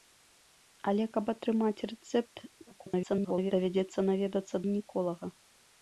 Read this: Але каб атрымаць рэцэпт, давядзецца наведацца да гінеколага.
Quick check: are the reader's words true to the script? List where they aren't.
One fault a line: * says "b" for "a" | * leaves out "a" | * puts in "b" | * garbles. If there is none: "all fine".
* garbles
* leaves out "да"